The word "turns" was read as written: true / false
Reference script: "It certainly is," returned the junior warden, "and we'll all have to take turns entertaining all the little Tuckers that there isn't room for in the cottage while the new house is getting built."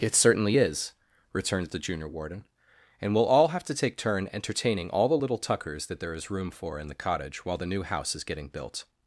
false